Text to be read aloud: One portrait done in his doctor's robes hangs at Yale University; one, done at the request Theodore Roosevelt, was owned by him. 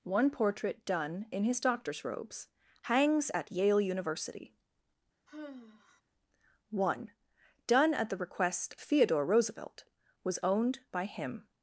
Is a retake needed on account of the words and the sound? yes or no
yes